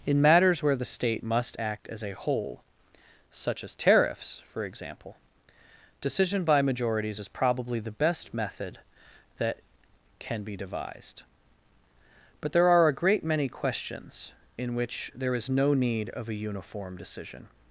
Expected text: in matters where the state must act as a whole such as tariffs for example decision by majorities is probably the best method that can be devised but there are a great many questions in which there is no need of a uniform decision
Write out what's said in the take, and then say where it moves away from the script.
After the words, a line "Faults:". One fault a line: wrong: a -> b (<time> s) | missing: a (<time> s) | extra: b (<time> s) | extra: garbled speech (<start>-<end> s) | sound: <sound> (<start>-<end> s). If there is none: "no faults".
in matters where the state must act as a whole such as tariffs for example decision by majorities is probably the best method that can be devised but there are a great many questions in which there is no need of a uniform decision
Faults:
no faults